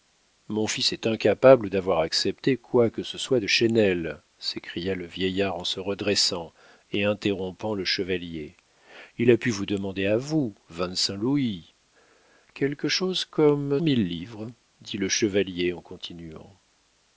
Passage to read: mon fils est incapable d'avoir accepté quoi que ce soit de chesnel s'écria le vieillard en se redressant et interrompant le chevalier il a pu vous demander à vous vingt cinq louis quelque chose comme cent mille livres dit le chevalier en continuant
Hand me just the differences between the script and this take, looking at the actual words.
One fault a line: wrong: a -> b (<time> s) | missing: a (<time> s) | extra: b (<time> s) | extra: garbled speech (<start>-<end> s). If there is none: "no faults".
missing: cent (13.8 s)